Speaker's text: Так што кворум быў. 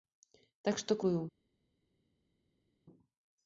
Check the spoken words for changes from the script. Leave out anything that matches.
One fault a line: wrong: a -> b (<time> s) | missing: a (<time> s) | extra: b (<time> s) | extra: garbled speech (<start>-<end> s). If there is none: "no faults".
missing: кворум (1.0 s)